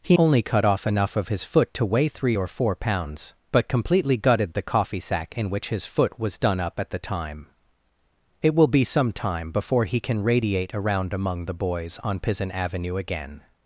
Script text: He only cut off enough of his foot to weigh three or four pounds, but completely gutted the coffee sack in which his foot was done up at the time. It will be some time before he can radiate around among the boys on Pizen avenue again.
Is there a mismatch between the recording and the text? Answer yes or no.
no